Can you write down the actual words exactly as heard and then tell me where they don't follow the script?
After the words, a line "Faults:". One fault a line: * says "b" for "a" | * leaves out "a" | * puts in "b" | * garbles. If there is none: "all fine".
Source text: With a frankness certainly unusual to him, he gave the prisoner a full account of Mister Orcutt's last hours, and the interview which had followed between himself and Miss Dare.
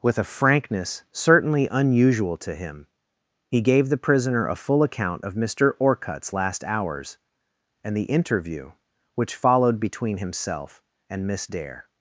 With a frankness certainly unusual to him, he gave the prisoner a full account of Mister Orcutt's last hours, and the interview which followed between himself and Miss Dare.
Faults:
* leaves out "had"